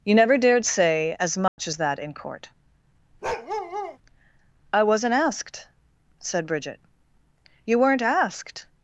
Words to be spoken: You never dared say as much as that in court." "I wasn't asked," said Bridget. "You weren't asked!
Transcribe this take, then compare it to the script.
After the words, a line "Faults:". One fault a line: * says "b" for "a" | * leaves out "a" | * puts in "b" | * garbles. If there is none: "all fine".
You never dared say as much as that in court." "I wasn't asked," said Bridget. "You weren't asked!
Faults:
all fine